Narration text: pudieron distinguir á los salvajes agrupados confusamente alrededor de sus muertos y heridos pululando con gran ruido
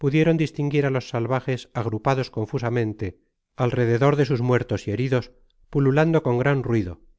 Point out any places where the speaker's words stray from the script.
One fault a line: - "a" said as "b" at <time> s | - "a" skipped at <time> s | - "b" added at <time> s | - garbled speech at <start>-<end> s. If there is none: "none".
none